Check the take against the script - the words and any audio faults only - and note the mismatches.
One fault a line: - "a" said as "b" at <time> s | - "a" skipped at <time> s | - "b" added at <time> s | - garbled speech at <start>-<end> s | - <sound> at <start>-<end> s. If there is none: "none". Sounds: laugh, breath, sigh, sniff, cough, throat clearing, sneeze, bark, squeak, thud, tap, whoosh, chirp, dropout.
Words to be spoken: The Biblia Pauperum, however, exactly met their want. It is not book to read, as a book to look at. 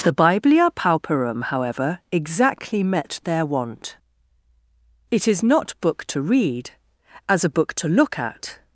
none